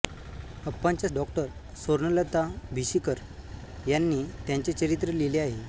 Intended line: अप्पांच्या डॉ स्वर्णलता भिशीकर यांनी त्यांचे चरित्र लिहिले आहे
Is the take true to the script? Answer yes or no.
yes